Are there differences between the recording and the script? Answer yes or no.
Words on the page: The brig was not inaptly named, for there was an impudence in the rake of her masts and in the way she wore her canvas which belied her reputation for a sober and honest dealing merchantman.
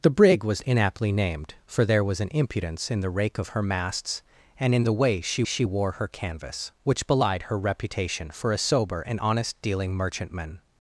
yes